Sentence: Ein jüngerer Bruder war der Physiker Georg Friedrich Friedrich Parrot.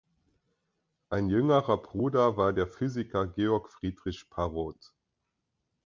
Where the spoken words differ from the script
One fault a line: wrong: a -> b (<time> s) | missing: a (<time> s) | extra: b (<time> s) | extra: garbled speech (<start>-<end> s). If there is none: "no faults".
missing: Friedrich (4.3 s)